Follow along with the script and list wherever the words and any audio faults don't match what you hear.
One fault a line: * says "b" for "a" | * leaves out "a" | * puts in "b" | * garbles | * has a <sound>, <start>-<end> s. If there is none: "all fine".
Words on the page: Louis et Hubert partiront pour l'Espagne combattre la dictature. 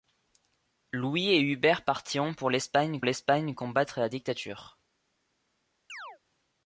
* puts in "l'Espagne"
* has a chirp, 5.9-6.2 s